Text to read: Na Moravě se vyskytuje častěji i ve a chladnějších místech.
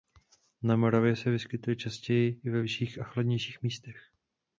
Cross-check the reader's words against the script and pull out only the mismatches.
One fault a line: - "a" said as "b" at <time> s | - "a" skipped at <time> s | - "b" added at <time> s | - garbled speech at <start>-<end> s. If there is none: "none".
- "vyšších" added at 2.6 s